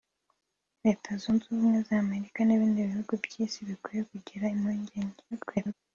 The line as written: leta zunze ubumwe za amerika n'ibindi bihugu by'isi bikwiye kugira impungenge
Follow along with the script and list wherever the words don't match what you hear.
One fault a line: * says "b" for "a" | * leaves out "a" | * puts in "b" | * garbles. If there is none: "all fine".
* garbles